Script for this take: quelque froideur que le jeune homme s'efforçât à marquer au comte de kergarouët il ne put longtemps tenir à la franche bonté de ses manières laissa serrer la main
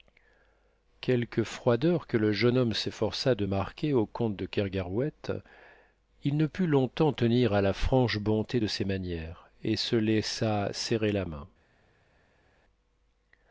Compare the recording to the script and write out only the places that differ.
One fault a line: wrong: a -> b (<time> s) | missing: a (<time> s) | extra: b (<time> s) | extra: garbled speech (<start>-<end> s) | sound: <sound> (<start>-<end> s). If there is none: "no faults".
wrong: à -> de (3.4 s)
extra: et se (9.6 s)